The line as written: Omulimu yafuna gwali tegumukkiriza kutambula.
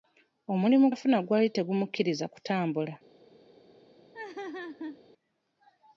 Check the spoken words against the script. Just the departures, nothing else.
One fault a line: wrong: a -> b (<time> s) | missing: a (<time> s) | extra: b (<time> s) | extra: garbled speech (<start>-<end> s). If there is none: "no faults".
no faults